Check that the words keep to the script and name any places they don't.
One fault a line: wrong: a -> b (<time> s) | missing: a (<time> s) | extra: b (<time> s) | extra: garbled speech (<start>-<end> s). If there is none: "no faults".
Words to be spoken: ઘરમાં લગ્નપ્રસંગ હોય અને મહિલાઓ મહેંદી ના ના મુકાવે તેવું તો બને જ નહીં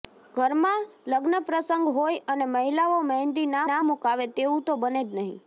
no faults